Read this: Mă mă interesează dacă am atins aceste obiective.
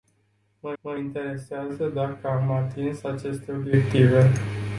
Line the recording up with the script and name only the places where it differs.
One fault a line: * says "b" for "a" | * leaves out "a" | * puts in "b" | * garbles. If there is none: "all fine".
all fine